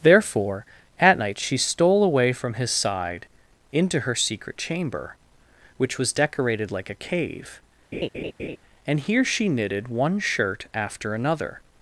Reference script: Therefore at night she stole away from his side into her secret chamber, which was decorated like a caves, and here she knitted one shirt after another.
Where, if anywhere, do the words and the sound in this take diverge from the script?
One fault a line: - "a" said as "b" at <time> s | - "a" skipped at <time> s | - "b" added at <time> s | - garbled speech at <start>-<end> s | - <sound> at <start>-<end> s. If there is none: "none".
- "caves" said as "cave" at 7.1 s
- laugh at 7.9-8.6 s